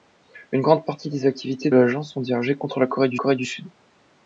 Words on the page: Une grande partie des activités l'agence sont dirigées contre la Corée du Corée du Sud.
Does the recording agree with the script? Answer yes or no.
yes